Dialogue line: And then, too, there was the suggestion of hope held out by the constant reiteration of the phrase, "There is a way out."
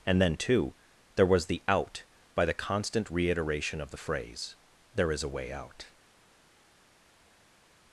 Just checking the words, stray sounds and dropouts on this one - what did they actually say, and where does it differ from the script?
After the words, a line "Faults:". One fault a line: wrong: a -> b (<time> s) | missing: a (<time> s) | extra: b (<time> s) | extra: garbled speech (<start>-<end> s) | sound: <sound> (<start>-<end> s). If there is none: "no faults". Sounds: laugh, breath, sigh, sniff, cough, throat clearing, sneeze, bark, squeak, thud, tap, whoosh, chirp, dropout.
And then, too, there was the out by the constant reiteration of the phrase, "There is a way out."
Faults:
missing: suggestion of hope held (1.6 s)